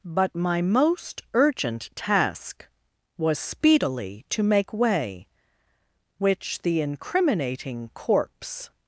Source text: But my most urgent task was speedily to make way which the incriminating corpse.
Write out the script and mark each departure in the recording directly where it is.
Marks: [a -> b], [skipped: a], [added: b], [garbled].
But my most urgent task was speedily to make way which the incriminating corpse.